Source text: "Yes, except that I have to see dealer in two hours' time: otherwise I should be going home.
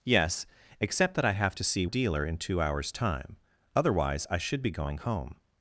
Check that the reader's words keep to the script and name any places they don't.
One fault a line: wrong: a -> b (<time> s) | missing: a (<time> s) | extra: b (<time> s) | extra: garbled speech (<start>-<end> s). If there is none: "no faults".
no faults